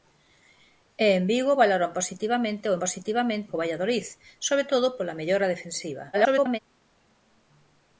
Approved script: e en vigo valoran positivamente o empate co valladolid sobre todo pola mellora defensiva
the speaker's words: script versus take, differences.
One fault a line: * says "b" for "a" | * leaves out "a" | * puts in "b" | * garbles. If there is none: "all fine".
* says "positivamente" for "empate"
* garbles